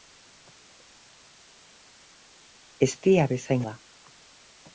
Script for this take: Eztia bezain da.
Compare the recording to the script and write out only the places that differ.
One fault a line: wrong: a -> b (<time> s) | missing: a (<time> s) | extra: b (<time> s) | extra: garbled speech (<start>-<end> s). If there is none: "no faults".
no faults